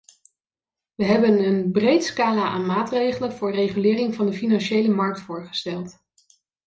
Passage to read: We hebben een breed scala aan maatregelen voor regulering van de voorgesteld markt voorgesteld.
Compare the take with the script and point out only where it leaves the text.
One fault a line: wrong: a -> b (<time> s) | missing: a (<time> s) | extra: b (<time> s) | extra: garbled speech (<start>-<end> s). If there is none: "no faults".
wrong: voorgesteld -> financiële (4.3 s)